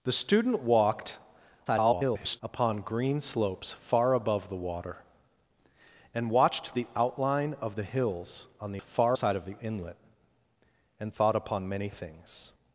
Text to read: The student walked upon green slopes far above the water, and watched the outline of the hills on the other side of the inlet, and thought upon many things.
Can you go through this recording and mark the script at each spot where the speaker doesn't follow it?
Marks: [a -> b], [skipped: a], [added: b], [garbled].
The student walked [garbled] upon green slopes far above the water, and watched the outline of the hills on the [other -> far] side of the inlet, and thought upon many things.